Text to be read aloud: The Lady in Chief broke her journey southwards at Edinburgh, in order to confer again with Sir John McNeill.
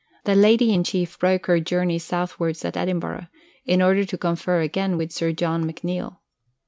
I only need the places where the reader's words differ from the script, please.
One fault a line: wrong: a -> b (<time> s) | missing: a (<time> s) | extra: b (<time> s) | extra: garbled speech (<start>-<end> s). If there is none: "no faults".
no faults